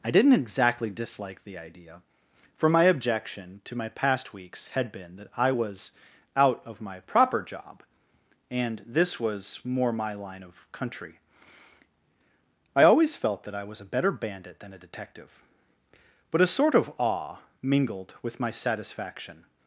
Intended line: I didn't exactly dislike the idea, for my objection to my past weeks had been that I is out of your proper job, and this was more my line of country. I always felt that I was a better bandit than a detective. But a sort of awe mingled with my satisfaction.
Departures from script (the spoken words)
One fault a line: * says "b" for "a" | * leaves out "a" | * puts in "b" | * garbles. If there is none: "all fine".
* says "was" for "is"
* says "my" for "your"